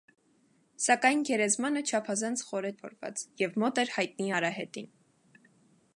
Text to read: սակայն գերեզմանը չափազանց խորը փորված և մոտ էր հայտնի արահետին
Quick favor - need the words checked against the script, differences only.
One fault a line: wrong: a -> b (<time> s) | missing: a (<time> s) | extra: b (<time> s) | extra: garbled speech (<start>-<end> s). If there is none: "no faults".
no faults